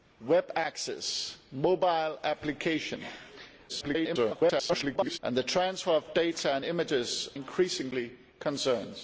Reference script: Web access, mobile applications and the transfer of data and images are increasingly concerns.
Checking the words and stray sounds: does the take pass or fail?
fail